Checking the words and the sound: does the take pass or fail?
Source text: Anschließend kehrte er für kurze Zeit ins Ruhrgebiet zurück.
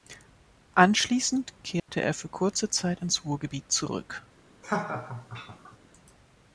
fail